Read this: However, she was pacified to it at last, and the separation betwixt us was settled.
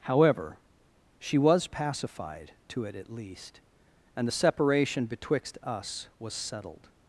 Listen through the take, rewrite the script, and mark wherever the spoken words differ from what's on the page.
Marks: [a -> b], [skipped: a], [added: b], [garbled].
However, she was pacified to it at [last, -> least] and the separation betwixt us was settled.